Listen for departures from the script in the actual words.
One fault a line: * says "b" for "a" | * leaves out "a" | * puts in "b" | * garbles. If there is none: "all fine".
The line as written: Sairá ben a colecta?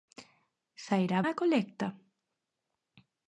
* leaves out "ben"